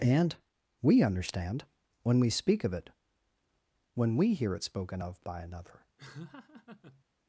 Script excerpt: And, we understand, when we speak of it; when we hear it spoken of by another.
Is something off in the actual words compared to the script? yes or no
no